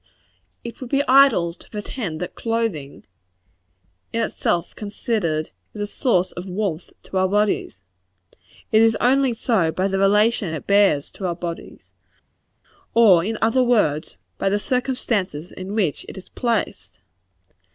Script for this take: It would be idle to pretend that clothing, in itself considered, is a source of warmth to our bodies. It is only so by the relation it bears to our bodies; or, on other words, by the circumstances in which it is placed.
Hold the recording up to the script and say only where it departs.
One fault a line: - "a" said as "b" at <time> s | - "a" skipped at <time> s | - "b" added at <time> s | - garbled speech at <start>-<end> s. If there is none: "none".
- "on" said as "in" at 13.2 s